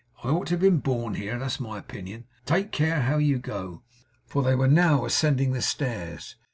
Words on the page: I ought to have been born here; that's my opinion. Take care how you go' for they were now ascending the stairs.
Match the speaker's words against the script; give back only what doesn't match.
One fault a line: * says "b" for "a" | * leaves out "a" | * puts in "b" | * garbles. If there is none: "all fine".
all fine